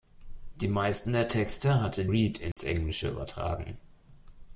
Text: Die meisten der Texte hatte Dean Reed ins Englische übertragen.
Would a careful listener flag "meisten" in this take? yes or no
no